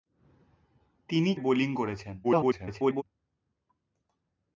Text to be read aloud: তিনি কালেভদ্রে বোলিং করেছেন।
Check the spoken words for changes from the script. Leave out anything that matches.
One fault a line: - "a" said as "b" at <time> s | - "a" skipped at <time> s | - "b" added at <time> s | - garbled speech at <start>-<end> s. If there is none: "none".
- "কালেভদ্রে" skipped at 1.4 s
- garbled speech at 2.2-3.0 s